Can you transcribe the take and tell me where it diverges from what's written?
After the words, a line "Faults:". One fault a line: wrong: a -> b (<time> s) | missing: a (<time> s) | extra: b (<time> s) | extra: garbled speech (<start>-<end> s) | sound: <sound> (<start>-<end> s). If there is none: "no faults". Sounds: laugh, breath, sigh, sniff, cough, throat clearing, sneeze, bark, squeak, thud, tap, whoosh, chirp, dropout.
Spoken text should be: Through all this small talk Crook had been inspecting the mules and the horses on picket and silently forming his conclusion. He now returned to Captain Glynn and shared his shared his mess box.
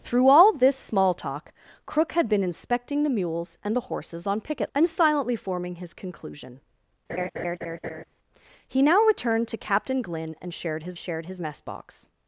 Through all this small talk Crook had been inspecting the mules and the horses on picket and silently forming his conclusion. He now returned to Captain Glynn and shared his shared his mess box.
Faults:
sound: laugh (7.1-8.0 s)